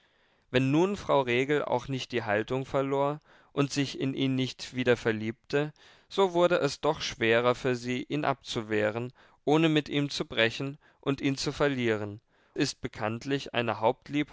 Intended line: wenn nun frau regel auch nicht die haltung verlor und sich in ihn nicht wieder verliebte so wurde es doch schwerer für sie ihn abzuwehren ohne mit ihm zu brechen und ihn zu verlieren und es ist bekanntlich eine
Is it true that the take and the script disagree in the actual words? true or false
true